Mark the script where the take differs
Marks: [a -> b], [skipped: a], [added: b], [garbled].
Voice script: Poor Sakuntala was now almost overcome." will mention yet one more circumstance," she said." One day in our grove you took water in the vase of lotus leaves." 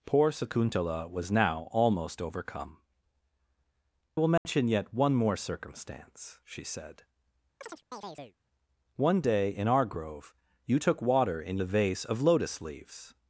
Poor Sakuntala was now almost overcome." will mention yet one more circumstance," she said." One day in our grove you took water in the vase of lotus leaves."